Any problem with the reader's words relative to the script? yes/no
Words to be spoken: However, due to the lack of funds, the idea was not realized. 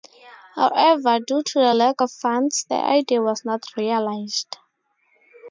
no